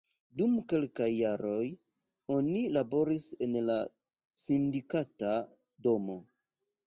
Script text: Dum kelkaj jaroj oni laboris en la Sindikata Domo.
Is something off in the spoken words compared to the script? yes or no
no